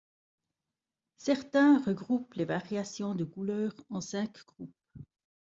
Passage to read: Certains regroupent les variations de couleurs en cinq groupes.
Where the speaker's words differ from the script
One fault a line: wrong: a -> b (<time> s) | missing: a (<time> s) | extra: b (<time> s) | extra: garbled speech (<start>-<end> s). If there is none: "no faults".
no faults